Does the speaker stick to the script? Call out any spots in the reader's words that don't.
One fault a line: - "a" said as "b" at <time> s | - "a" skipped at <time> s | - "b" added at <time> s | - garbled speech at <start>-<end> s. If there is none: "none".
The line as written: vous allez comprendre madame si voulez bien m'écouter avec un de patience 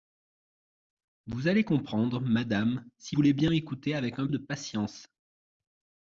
none